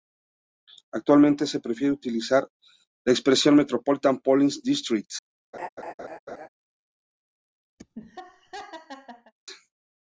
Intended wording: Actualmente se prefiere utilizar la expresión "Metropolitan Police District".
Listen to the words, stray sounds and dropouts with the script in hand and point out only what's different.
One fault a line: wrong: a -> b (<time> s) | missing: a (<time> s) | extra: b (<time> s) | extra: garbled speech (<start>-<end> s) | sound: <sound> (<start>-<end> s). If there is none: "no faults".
sound: laugh (5.5-6.5 s)
sound: laugh (7.8-9.3 s)